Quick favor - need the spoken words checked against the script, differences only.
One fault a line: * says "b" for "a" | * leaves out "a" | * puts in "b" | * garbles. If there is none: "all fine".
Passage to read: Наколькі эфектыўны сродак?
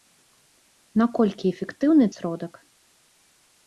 all fine